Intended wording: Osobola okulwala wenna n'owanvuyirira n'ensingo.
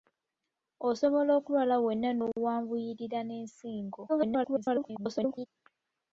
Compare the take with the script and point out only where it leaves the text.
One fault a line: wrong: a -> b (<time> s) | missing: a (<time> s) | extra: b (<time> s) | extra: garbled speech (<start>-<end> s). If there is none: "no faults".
extra: garbled speech (4.1-5.5 s)